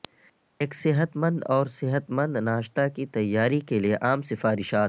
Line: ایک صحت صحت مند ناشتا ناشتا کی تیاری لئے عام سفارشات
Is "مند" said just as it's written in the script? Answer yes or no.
yes